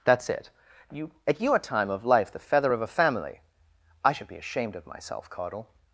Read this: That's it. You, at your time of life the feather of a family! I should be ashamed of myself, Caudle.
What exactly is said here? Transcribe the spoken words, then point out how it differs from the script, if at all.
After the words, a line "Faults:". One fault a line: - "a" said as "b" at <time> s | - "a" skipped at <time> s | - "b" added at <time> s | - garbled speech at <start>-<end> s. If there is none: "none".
That's it. You, at your time of life the feather of a family! I should be ashamed of myself, Caudle.
Faults:
none